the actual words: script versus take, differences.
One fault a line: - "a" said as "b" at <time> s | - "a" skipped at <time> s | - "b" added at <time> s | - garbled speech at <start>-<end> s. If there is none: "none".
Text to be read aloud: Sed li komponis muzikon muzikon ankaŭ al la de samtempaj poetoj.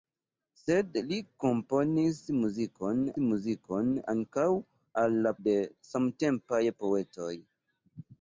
none